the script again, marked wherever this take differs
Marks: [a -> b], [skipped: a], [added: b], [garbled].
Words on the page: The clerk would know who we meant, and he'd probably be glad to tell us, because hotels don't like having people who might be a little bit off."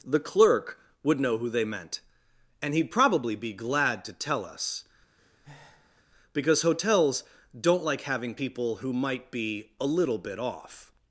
The clerk would know who [we -> they] meant, and he'd probably be glad to tell us, because hotels don't like having people who might be a little bit off."